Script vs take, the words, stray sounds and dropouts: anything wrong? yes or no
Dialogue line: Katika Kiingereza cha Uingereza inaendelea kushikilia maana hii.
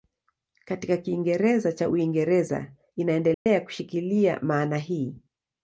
yes